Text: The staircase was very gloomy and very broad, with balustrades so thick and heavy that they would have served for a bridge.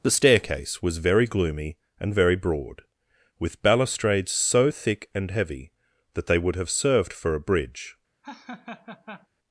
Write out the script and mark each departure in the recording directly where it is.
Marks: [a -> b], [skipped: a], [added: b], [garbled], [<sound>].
The staircase was very gloomy and very broad, with balustrades so thick and heavy that they would have served for a bridge. [laugh]